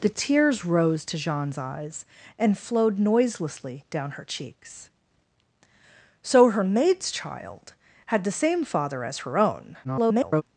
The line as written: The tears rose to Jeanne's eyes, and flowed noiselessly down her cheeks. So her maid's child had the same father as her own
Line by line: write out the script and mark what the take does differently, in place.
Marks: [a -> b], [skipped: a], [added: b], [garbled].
The tears rose to Jeanne's eyes, and flowed noiselessly down her cheeks. So her maid's child had the same father as her own [garbled]